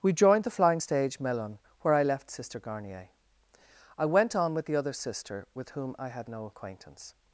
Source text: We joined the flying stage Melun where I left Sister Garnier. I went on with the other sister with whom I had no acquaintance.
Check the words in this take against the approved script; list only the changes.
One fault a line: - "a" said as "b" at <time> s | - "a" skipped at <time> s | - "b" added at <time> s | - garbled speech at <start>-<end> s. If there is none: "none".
none